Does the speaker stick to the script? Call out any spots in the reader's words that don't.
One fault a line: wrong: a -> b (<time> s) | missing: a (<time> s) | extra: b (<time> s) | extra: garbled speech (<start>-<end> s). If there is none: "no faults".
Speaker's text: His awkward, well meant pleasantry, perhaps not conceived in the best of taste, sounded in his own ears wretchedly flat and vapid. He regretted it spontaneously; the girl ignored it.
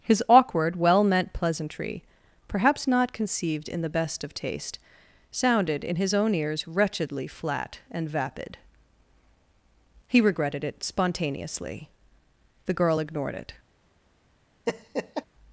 no faults